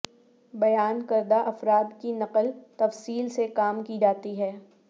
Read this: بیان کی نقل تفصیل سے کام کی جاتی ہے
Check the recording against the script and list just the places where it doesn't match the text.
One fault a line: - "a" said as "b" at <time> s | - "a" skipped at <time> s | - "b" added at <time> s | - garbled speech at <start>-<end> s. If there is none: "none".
- "کردہ افراد" added at 1.1 s